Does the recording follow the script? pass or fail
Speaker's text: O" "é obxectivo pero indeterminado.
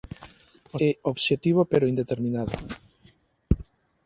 pass